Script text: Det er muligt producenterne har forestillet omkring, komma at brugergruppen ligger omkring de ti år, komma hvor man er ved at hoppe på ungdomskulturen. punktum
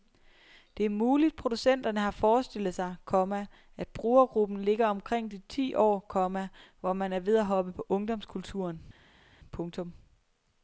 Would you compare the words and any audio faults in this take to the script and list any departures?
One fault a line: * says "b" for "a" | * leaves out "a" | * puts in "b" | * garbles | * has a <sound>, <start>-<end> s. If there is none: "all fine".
* says "sig" for "omkring"